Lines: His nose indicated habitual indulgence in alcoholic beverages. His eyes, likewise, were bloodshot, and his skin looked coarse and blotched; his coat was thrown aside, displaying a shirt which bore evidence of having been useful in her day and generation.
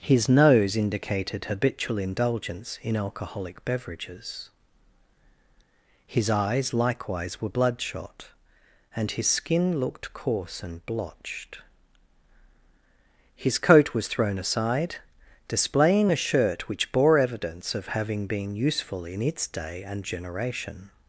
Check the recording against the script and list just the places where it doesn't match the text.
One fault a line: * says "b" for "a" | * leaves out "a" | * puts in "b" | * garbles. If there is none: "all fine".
* says "its" for "her"